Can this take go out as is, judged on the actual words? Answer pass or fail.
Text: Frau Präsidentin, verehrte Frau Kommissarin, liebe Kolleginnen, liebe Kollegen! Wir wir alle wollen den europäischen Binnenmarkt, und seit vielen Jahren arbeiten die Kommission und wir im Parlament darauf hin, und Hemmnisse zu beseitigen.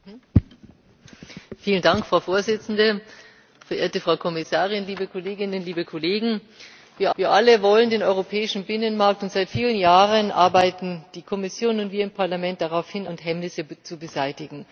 pass